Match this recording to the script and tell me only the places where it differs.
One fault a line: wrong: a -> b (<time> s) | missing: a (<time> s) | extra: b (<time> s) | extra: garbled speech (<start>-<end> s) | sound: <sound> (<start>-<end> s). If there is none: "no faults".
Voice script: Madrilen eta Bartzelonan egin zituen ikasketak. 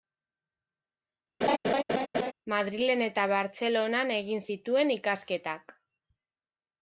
sound: laugh (1.4-2.3 s)